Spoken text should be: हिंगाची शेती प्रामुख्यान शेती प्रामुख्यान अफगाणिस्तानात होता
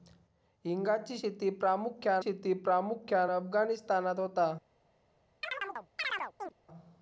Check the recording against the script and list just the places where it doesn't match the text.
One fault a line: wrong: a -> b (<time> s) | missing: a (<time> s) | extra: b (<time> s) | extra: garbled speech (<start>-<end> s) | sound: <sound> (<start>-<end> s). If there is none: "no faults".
sound: chirp (5.4-6.5 s)